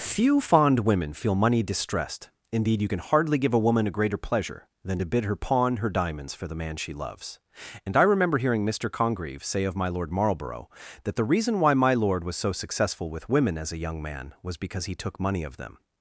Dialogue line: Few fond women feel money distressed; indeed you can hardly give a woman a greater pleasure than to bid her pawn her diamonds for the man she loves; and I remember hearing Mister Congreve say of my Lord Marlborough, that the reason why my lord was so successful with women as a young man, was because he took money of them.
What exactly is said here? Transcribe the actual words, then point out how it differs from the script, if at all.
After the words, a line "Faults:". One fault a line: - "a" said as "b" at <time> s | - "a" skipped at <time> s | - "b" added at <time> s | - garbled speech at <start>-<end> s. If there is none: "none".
Few fond women feel money distressed; indeed you can hardly give a woman a greater pleasure than to bid her pawn her diamonds for the man she loves; and I remember hearing Mister Congreve say of my Lord Marlborough, that the reason why my lord was so successful with women as a young man, was because he took money of them.
Faults:
none